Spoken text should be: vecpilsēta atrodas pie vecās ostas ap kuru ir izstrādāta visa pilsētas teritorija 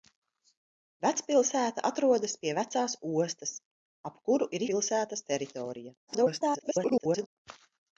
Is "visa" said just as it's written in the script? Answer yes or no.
no